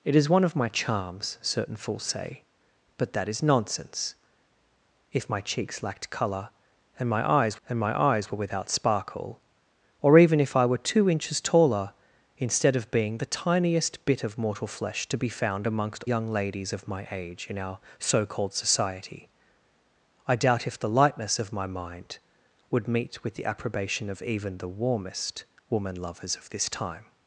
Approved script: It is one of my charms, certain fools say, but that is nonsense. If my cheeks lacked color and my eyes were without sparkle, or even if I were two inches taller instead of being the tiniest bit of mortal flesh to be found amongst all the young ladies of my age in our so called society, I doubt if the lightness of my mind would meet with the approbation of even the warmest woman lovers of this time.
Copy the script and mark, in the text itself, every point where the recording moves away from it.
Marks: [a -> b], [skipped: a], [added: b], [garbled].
It is one of my charms, certain fools say, but that is nonsense. If my cheeks lacked color and my eyes [added: and my eyes] were without sparkle, or even if I were two inches taller instead of being the tiniest bit of mortal flesh to be found amongst [skipped: all the] young ladies of my age in our so called society, I doubt if the lightness of my mind would meet with the approbation of even the warmest woman lovers of this time.